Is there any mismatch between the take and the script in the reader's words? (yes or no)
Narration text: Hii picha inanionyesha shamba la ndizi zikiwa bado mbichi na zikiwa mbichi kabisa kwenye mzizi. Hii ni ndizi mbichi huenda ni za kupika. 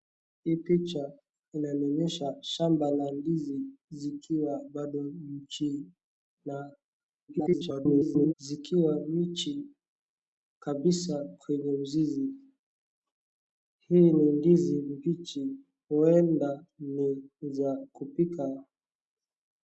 yes